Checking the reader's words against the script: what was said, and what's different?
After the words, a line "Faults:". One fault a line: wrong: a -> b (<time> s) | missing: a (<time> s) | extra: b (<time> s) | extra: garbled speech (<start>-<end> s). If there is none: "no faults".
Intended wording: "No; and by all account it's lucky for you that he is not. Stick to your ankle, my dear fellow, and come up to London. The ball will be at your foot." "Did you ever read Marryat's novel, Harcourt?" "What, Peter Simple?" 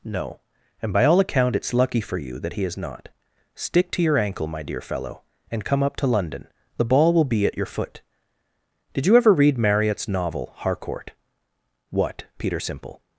"No; and by all account it's lucky for you that he is not. Stick to your ankle, my dear fellow, and come up to London. The ball will be at your foot." "Did you ever read Marryat's novel, Harcourt?" "What, Peter Simple?"
Faults:
no faults